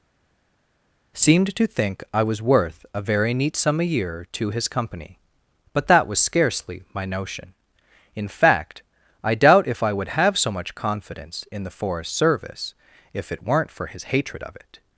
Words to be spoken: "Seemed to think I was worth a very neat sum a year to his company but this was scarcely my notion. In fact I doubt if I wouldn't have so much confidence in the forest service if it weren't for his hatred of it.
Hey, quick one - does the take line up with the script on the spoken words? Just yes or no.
no